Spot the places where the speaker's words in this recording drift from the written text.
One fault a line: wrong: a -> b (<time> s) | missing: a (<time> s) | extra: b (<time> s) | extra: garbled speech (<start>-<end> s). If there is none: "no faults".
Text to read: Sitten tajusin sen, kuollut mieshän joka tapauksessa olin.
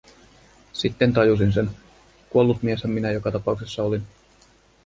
extra: minä (2.9 s)